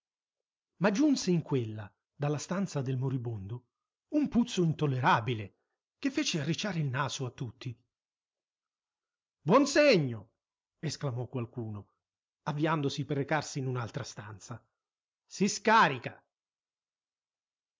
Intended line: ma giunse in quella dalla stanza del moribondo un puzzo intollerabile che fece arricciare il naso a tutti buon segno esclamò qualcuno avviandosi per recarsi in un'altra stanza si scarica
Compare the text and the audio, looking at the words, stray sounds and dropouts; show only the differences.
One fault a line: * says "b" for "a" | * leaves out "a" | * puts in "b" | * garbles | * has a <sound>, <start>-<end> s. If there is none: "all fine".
all fine